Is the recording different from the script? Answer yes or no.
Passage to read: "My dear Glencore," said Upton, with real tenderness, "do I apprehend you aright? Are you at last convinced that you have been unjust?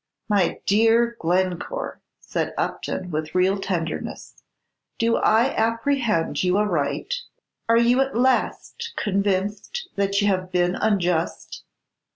no